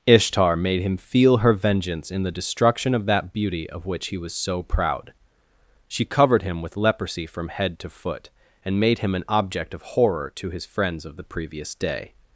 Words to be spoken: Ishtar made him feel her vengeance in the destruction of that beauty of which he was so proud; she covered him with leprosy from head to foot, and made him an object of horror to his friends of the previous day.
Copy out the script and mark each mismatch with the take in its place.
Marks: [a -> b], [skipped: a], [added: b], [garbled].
Ishtar made him feel her vengeance in the destruction of that beauty of which he was so proud; she covered him with leprosy from head to foot, and made him an object of horror to his friends of the previous day.